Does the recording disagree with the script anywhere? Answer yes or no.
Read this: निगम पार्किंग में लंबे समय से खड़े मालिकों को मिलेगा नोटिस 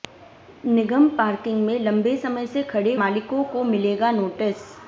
no